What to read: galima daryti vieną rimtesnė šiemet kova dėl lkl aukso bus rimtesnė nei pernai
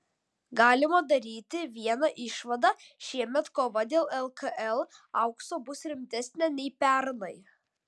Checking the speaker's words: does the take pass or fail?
fail